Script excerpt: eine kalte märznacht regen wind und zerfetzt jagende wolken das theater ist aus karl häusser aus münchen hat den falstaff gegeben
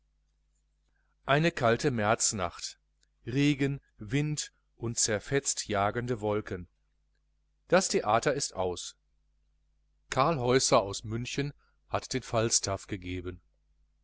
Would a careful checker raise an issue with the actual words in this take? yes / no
no